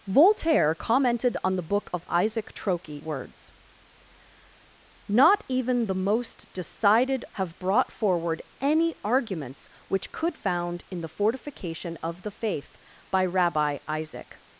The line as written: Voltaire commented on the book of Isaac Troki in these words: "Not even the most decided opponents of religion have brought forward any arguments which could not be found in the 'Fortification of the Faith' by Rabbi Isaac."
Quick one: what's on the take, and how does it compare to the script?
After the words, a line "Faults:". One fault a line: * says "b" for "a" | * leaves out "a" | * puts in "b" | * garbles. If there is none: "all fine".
Voltaire commented on the book of Isaac Troki words: "Not even the most decided have brought forward any arguments which could found in the 'Fortification of the Faith' by Rabbi Isaac."
Faults:
* leaves out "in these"
* leaves out "opponents of religion"
* leaves out "not be"